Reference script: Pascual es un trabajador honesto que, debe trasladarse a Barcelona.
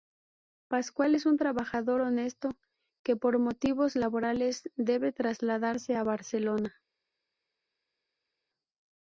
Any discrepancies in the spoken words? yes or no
yes